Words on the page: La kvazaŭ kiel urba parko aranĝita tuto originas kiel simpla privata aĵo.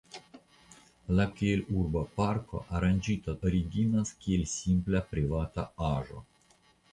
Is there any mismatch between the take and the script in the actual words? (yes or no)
yes